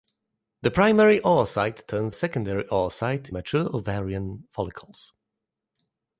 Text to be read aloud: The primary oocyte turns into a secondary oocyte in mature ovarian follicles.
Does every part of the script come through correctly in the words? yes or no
no